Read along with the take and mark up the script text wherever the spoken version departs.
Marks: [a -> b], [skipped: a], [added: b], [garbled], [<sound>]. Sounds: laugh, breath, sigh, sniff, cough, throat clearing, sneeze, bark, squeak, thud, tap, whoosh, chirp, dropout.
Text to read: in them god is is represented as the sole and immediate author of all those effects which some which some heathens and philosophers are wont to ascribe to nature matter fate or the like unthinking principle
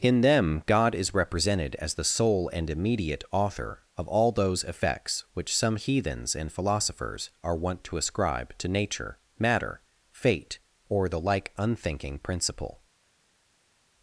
in them god is [skipped: is] represented as the sole and immediate author of all those effects which some [skipped: which some] heathens and philosophers are wont to ascribe to nature matter fate or the like unthinking principle